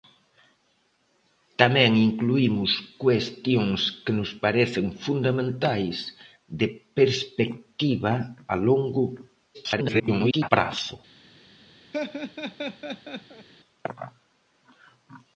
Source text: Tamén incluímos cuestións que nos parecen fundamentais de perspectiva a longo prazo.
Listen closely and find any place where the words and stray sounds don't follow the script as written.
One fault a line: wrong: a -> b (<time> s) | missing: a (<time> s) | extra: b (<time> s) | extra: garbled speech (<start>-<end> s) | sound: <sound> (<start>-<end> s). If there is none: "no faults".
extra: garbled speech (9.5-10.5 s)
sound: laugh (11.9-13.5 s)